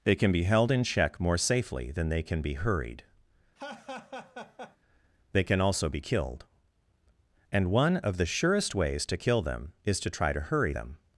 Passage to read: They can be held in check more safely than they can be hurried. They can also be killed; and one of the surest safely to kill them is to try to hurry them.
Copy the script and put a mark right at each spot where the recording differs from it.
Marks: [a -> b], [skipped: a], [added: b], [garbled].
They can be held in check more safely than they can be hurried. They can also be killed; and one of the surest [safely -> ways] to kill them is to try to hurry them.